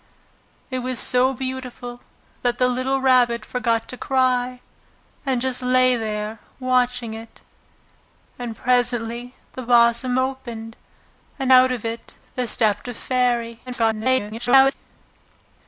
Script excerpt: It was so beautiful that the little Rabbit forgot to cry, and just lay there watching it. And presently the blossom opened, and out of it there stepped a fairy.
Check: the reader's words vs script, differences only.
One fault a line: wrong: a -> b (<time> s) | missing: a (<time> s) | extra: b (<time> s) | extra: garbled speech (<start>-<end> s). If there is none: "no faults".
extra: garbled speech (13.7-14.7 s)